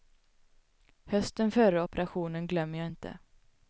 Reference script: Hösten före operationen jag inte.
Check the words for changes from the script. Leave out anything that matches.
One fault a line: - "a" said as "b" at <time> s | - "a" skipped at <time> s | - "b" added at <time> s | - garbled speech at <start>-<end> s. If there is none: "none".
- "glömmer" added at 2.5 s